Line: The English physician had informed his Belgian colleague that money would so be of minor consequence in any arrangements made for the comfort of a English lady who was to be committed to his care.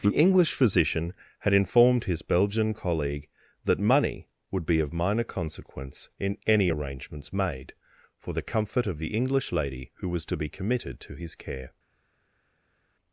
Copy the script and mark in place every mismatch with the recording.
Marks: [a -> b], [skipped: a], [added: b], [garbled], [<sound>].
The English physician had informed his Belgian colleague that money would [skipped: so] be of minor consequence in any arrangements made for the comfort of [a -> the] English lady who was to be committed to his care.